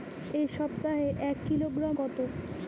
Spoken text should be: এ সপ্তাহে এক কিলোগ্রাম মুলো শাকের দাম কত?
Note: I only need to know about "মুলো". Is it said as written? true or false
false